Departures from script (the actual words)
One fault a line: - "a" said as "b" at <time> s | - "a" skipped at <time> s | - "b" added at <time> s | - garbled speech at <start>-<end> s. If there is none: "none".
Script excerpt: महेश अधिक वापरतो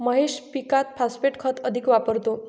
- "पीकात फॉस्फेट खत" added at 0.5 s